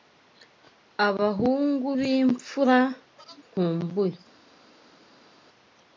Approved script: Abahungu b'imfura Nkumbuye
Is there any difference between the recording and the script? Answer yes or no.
no